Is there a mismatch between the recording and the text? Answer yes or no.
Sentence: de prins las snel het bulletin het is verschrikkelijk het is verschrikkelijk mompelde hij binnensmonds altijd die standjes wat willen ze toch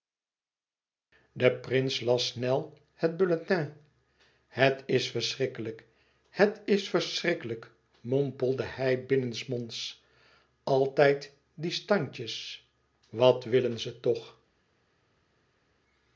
no